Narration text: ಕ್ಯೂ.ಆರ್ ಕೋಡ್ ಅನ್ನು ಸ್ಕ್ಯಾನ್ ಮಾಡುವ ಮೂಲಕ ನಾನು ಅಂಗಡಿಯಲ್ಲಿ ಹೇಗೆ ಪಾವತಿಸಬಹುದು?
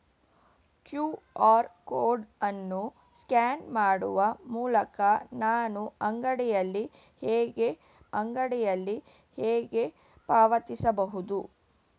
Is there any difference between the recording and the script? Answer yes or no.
yes